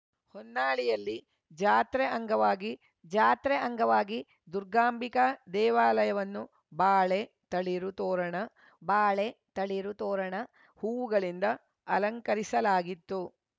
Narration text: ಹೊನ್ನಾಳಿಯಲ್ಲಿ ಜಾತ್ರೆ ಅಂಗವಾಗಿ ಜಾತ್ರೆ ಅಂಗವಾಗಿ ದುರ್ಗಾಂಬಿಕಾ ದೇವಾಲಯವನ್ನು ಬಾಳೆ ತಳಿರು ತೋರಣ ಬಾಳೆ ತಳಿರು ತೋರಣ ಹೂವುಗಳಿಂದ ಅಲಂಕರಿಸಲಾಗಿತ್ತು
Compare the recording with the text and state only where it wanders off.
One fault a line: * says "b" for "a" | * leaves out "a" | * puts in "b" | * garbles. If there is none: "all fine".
all fine